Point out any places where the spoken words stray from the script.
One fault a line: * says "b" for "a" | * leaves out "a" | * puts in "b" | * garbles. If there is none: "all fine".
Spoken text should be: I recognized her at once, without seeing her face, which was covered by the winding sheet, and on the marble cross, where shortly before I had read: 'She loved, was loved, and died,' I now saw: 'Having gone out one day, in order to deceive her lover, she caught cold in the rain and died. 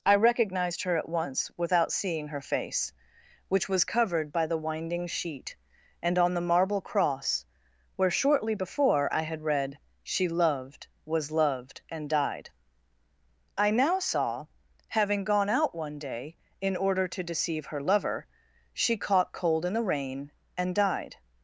all fine